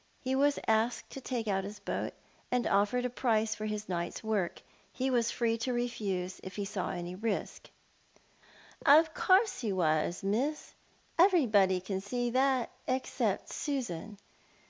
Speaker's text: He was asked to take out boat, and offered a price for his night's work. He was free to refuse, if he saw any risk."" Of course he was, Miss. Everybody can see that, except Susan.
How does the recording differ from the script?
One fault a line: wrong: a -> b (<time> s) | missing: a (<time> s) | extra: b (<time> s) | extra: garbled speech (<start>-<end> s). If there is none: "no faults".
extra: his (1.7 s)